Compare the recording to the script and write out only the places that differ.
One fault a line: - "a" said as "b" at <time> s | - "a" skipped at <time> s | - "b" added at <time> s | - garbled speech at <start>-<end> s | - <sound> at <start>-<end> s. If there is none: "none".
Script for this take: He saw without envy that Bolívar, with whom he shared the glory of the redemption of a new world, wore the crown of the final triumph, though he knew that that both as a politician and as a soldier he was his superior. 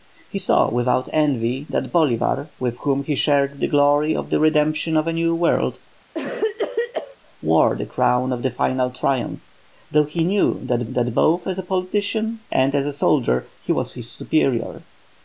- cough at 6.1-7.2 s